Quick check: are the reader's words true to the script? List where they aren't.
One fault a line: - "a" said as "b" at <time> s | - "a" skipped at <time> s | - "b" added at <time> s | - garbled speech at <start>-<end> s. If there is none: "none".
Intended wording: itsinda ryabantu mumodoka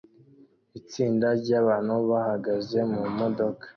- "bahagaze" added at 2.1 s